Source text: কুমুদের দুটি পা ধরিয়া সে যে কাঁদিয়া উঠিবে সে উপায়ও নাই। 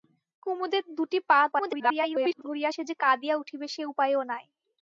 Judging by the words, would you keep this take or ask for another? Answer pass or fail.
fail